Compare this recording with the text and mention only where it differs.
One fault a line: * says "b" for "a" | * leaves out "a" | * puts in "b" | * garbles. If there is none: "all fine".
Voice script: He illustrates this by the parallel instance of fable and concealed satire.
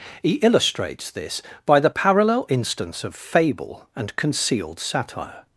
all fine